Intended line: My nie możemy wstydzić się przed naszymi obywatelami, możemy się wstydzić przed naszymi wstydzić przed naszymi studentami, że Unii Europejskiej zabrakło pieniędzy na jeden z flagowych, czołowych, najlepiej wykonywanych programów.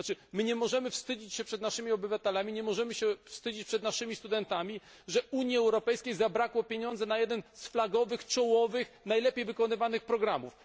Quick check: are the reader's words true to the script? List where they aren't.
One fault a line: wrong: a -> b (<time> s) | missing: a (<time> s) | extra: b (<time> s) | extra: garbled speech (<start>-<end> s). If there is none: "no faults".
extra: nie (2.5 s)
missing: wstydzić przed naszymi (4.2 s)